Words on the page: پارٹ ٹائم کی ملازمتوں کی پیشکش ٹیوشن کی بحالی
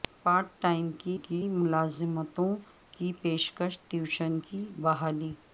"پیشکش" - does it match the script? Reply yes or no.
yes